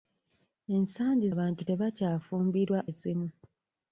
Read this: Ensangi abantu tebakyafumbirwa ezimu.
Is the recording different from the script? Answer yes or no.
no